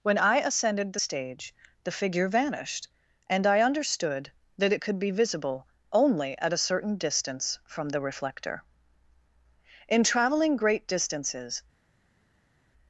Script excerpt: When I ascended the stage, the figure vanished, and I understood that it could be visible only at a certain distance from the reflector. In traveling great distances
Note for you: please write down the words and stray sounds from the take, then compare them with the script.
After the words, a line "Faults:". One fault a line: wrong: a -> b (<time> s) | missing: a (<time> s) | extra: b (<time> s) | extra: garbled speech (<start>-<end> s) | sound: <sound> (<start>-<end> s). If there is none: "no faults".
When I ascended the stage, the figure vanished, and I understood that it could be visible only at a certain distance from the reflector. In traveling great distances
Faults:
no faults